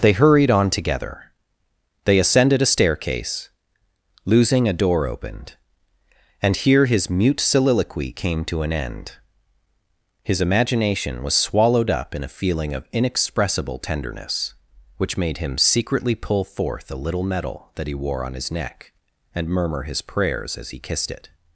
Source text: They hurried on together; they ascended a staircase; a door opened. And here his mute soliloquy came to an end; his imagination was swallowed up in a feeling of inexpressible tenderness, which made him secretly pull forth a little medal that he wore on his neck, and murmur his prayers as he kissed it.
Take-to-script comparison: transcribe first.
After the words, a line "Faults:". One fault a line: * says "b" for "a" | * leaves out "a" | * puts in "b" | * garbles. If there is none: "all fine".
They hurried on together; they ascended a staircase; losing a door opened. And here his mute soliloquy came to an end; his imagination was swallowed up in a feeling of inexpressible tenderness, which made him secretly pull forth a little medal that he wore on his neck, and murmur his prayers as he kissed it.
Faults:
* puts in "losing"